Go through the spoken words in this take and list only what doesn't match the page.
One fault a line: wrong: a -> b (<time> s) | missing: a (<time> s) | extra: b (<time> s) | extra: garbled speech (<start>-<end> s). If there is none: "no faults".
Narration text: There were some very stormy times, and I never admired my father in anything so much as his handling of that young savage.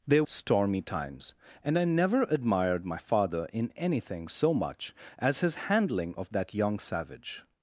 missing: were some very (0.2 s)